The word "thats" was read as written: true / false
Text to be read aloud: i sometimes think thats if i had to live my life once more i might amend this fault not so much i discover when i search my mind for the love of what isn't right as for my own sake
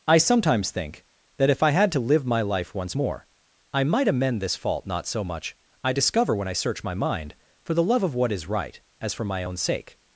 false